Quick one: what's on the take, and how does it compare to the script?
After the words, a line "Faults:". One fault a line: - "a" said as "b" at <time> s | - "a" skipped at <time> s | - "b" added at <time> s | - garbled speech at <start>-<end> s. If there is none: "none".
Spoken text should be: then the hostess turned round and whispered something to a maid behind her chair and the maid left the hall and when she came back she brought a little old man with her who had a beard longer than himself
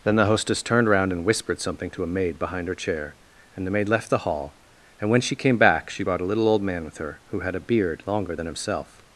then the hostess turned round and whispered something to a maid behind her chair and the maid left the hall and when she came back she brought a little old man with her who had a beard longer than himself
Faults:
none